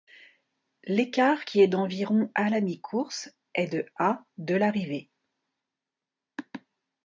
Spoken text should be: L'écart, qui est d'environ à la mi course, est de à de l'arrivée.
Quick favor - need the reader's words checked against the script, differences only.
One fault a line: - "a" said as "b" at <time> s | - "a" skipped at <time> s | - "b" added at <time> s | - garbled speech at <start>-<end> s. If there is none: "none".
none